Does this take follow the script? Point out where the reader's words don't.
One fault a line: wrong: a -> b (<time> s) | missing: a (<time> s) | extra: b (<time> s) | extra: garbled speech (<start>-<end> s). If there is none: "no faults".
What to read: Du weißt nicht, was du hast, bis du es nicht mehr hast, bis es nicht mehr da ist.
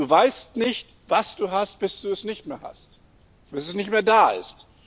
no faults